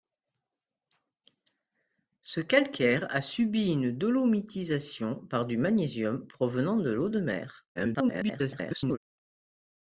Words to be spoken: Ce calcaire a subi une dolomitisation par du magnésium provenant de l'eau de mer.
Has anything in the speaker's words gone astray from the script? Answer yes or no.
yes